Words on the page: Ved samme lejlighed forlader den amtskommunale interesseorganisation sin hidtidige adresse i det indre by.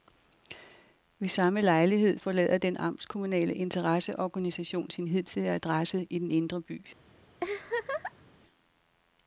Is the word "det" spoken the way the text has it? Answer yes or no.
no